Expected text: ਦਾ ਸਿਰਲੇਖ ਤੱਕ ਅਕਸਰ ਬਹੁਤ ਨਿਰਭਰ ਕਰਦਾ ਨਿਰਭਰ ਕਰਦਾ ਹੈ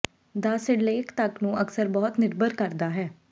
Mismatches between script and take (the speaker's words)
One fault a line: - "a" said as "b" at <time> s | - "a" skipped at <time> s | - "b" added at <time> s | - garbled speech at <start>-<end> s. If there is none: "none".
- "ਨੂੰ" added at 1.4 s
- "ਨਿਰਭਰ ਕਰਦਾ" skipped at 2.9 s